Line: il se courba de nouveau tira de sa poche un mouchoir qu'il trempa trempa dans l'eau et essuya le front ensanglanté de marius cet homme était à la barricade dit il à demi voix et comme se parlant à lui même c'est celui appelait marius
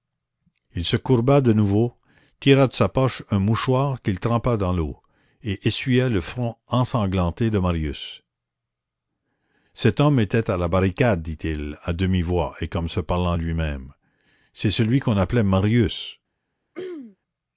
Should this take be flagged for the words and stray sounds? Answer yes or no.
yes